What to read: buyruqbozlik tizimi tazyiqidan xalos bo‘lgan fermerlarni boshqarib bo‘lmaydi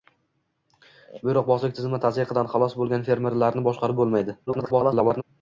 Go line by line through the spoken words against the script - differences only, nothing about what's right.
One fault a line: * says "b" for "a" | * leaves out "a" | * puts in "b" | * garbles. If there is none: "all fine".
* garbles